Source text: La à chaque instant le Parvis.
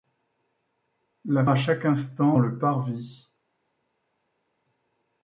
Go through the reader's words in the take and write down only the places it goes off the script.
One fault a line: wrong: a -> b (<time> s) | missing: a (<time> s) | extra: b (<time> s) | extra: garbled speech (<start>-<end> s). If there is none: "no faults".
no faults